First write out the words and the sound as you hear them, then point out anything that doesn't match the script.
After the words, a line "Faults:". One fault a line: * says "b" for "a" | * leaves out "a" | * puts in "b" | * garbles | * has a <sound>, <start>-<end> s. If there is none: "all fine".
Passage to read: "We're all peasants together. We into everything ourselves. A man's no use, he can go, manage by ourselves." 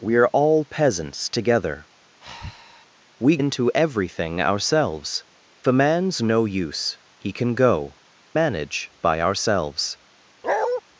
"We're all peasants together. We into everything ourselves. A man's no use, he can go, manage by ourselves."
Faults:
* has a breath, 2.2-2.9 s
* has a bark, 10.4-10.8 s